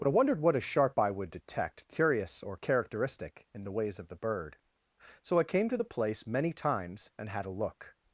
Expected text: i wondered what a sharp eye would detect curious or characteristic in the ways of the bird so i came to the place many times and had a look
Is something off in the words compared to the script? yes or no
yes